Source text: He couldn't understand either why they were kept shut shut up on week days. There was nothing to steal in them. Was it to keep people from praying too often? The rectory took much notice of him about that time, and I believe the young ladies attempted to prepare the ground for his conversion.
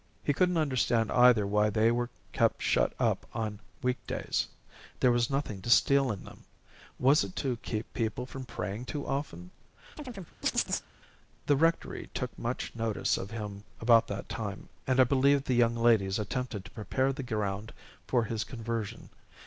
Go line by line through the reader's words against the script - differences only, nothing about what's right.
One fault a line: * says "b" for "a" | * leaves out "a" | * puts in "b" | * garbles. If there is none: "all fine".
* leaves out "shut"